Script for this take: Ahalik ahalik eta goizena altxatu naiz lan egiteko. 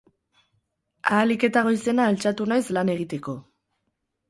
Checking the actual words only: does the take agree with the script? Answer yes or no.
no